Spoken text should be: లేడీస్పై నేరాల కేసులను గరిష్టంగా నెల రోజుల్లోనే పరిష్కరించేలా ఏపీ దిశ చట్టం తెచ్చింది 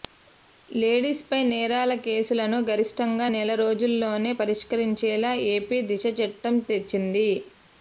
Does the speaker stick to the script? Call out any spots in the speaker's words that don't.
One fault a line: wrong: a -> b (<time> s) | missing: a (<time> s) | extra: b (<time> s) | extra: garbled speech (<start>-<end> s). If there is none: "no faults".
no faults